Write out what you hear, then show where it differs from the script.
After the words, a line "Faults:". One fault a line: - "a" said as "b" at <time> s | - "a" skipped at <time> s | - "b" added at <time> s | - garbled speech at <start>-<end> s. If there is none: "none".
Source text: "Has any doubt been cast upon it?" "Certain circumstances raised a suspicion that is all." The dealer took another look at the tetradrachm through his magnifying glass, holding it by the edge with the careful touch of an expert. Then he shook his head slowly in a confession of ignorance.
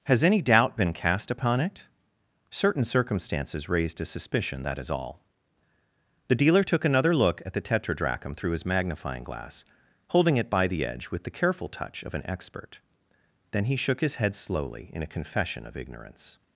"Has any doubt been cast upon it?" "Certain circumstances raised a suspicion that is all." The dealer took another look at the tetradrachm through his magnifying glass, holding it by the edge with the careful touch of an expert. Then he shook his head slowly in a confession of ignorance.
Faults:
none